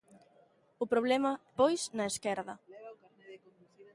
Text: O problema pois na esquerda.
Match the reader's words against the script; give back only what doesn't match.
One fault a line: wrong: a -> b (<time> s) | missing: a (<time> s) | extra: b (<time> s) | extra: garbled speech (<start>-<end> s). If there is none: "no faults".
no faults